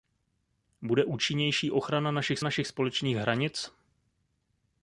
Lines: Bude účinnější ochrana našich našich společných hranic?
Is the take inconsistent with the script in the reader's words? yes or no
no